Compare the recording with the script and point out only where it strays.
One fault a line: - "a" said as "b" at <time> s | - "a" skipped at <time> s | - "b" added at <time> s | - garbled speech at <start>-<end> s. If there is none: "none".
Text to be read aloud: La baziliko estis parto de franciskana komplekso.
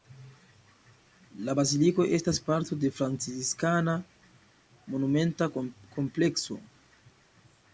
- "estis" said as "estas" at 2.2 s
- "monumenta" added at 4.9 s